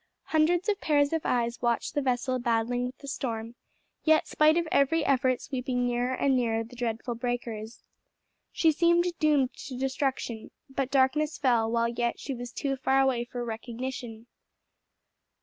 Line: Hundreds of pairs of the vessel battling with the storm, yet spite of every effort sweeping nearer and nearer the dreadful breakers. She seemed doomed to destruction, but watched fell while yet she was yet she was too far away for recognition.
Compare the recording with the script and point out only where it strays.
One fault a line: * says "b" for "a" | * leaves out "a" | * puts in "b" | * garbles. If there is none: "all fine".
* puts in "eyes watched"
* says "darkness" for "watched"
* leaves out "yet she was"